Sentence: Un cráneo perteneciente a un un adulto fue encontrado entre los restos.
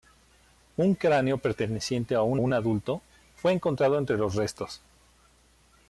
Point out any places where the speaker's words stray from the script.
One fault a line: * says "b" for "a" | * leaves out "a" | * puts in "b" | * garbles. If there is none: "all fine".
all fine